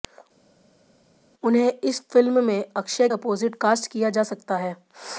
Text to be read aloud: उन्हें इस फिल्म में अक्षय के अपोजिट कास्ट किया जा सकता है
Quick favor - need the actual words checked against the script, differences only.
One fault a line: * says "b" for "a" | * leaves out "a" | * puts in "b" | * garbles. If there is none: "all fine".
* leaves out "के"